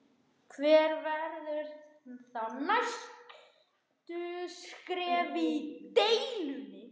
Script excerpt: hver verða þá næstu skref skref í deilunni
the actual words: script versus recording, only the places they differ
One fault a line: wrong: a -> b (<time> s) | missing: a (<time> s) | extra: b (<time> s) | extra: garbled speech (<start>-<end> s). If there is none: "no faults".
missing: skref (5.4 s)